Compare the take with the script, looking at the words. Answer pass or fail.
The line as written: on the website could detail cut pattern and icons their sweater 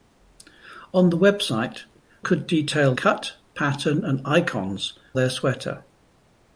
pass